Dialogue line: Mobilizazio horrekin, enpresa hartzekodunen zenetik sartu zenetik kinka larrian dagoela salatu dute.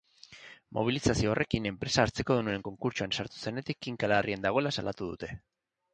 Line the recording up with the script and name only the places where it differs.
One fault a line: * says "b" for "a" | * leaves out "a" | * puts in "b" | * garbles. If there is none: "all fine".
* says "konkurtsoan" for "zenetik"